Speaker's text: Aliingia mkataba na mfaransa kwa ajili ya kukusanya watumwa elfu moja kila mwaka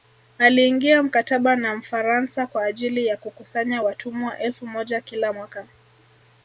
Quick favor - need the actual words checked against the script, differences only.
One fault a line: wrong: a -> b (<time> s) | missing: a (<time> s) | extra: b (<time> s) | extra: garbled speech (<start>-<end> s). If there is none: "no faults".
no faults